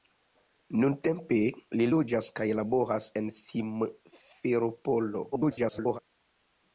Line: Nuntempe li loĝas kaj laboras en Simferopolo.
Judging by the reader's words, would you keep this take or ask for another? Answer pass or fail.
fail